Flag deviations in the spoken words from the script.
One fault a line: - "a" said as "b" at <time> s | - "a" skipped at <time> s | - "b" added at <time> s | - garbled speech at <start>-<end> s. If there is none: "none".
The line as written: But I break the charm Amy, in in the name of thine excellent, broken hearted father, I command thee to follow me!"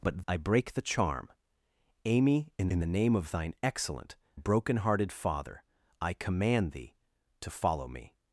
none